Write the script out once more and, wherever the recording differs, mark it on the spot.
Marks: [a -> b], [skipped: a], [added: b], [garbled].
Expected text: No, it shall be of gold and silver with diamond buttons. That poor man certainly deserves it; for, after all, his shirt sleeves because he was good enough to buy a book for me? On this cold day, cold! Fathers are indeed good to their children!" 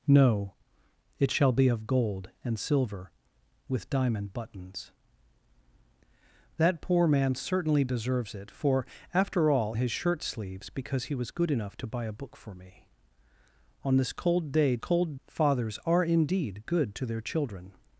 No, it shall be of gold and silver with diamond buttons. That poor man certainly deserves it; for, after all, his shirt sleeves because he was good enough to buy a book for me? On this cold day, cold! Fathers are indeed good to their children!"